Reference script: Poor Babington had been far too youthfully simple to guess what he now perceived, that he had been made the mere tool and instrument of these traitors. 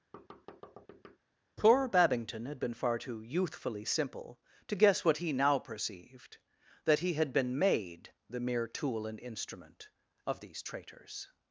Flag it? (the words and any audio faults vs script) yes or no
yes